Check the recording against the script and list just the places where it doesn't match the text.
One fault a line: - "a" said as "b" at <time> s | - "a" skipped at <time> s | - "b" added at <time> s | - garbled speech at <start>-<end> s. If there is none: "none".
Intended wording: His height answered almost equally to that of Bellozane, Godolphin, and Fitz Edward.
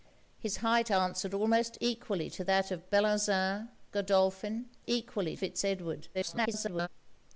- "and" said as "equally" at 4.9 s
- garbled speech at 6.1-6.9 s